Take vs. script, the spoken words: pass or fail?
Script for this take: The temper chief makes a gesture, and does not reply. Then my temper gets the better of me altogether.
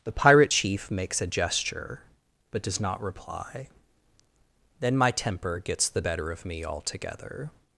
fail